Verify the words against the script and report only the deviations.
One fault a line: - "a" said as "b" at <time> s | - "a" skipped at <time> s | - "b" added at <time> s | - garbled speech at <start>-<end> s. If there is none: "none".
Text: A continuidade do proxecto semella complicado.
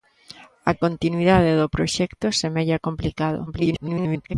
- garbled speech at 3.5-4.3 s